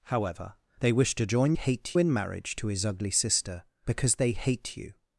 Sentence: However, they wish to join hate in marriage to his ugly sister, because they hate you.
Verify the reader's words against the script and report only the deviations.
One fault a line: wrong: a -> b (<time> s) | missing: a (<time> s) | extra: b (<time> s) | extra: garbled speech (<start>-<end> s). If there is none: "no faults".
no faults